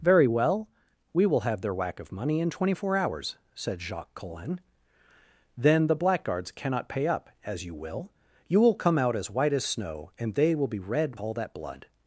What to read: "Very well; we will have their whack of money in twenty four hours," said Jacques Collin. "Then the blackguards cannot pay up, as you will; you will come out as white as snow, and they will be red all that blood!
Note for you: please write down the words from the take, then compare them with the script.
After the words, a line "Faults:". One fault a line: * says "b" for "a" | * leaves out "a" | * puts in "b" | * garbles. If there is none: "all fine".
"Very well; we will have their whack of money in twenty four hours," said Jacques Collin. "Then the blackguards cannot pay up, as you will; you will come out as white as snow, and they will be red all that blood!
Faults:
all fine